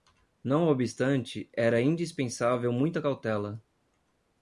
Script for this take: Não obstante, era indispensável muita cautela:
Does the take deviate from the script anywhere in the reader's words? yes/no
no